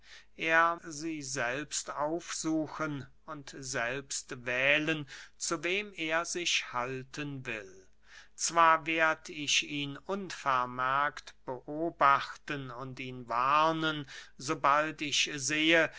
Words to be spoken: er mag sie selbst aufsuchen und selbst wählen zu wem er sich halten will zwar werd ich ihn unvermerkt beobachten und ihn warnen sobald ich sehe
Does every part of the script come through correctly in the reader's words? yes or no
no